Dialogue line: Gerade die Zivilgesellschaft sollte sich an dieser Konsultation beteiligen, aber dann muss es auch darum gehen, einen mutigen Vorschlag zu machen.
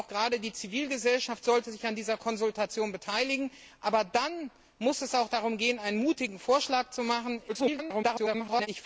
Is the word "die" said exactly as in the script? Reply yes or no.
yes